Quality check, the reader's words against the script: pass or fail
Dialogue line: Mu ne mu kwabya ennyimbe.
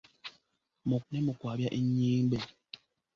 pass